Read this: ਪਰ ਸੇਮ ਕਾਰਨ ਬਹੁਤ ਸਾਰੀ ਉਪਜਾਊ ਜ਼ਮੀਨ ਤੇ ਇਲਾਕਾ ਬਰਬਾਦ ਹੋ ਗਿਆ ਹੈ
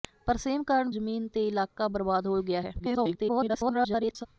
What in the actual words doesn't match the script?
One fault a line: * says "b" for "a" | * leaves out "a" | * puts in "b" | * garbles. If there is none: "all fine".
* leaves out "ਬਹੁਤ ਸਾਰੀ ਉਪਜਾਊ"
* garbles